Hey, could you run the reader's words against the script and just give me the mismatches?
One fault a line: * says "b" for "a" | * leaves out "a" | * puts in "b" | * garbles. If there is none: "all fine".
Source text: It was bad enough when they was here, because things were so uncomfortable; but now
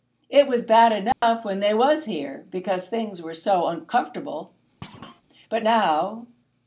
all fine